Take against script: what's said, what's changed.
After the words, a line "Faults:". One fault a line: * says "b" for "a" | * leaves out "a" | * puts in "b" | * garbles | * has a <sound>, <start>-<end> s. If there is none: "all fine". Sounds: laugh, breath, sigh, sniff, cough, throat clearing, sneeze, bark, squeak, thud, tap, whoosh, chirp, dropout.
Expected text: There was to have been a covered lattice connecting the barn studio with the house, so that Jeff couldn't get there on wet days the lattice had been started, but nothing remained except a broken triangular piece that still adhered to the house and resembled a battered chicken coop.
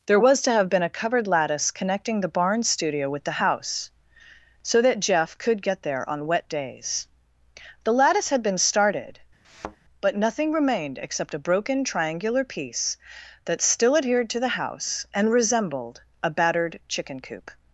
There was to have been a covered lattice connecting the barn studio with the house, so that Jeff could get there on wet days the lattice had been started, but nothing remained except a broken triangular piece that still adhered to the house and resembled a battered chicken coop.
Faults:
* says "could" for "couldn't"
* has a thud, 9.4-9.8 s